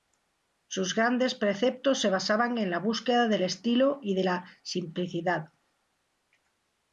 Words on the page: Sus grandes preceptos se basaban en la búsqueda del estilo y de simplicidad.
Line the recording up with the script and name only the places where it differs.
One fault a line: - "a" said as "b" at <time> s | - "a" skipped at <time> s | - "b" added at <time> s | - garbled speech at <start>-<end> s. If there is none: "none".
- "la" added at 4.2 s